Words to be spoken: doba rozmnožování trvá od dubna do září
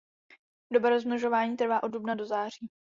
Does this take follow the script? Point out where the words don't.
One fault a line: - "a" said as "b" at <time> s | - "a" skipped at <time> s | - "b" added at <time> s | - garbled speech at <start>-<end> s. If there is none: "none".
none